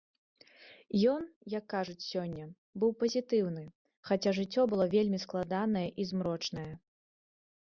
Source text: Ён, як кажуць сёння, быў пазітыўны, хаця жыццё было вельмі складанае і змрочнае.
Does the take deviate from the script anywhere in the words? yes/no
no